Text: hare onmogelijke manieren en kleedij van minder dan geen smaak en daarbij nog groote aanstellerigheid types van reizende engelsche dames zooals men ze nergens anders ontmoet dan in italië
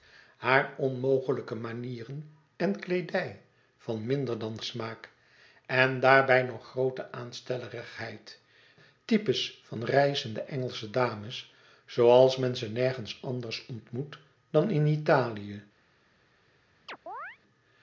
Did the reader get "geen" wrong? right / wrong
wrong